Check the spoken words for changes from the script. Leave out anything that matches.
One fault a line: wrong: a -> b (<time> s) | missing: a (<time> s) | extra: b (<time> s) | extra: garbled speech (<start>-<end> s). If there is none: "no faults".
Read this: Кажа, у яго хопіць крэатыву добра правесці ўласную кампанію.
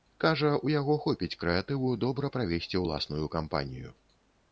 no faults